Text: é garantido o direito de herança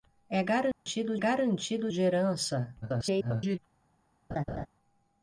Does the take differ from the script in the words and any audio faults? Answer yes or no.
yes